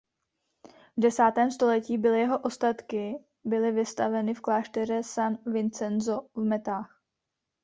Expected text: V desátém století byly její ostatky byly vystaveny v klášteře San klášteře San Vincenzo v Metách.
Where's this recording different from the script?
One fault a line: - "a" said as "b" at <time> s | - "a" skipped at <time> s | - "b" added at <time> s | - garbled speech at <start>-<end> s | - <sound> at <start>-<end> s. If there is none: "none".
- "její" said as "jeho" at 2.2 s
- "klášteře San" skipped at 5.4 s